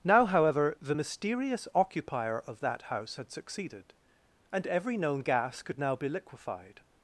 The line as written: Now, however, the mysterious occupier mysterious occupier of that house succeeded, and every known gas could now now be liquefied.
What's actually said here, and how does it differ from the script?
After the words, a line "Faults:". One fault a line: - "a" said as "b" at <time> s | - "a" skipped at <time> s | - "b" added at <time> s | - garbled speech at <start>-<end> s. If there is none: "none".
Now, however, the mysterious occupier of that house had succeeded, and every known gas could now be liquefied.
Faults:
- "mysterious occupier" skipped at 2.4 s
- "had" added at 3.1 s
- "now" skipped at 5.9 s